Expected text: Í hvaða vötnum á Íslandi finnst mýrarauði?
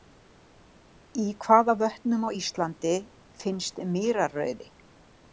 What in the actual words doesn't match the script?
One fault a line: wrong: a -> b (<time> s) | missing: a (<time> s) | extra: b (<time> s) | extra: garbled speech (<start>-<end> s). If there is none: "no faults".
no faults